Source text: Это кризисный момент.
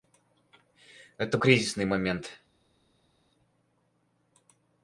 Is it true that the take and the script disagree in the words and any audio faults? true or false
false